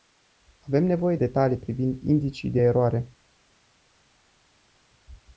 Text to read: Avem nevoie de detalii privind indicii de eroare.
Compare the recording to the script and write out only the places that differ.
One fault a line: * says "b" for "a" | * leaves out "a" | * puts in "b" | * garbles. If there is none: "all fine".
* leaves out "de"